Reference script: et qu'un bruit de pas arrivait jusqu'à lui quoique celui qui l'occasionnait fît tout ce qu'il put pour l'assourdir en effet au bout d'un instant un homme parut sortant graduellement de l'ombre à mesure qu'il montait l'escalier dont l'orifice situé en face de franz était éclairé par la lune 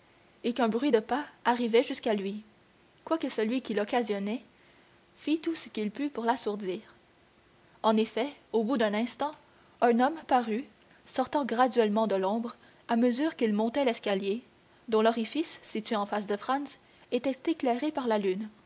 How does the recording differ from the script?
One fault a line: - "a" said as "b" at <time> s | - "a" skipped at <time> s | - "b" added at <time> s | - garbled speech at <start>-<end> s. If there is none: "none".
none